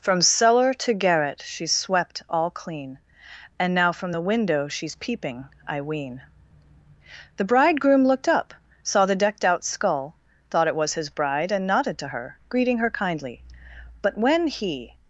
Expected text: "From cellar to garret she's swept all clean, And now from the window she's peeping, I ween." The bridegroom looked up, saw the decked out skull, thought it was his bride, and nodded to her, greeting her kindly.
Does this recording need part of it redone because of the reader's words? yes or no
yes